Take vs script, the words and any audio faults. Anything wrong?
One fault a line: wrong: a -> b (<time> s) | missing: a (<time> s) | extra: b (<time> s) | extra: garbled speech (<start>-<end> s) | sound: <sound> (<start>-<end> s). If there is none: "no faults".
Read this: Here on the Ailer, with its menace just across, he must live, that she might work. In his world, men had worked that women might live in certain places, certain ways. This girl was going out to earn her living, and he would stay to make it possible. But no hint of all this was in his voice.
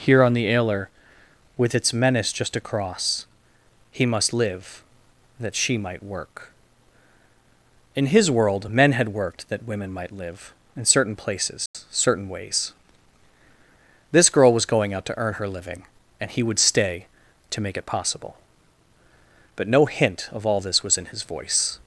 sound: dropout (11.7-11.7 s)